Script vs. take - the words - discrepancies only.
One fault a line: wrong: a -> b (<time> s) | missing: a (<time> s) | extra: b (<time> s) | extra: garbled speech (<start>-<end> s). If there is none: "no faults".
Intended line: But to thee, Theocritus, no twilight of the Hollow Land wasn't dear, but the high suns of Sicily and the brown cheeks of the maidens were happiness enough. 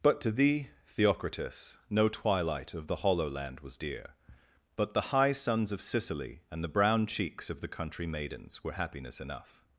wrong: wasn't -> was (3.6 s)
extra: country (7.7 s)